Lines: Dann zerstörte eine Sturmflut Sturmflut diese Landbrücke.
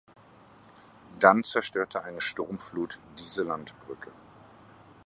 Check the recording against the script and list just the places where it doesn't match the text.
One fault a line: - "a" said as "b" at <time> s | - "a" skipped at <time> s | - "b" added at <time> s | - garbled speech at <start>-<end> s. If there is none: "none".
- "Sturmflut" skipped at 3.0 s